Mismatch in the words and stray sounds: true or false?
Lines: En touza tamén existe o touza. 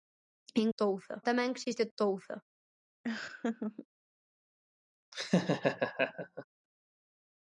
true